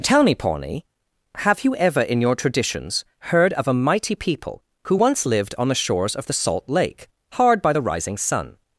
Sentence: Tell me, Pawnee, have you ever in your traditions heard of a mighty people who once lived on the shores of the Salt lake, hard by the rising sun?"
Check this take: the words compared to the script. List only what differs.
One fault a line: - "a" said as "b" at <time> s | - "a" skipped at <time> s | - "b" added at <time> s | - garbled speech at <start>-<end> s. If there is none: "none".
none